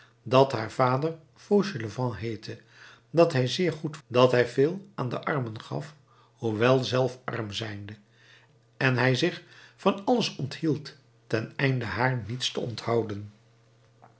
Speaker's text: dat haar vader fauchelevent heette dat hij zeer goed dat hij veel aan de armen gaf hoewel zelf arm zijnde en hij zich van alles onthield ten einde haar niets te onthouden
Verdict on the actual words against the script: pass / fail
pass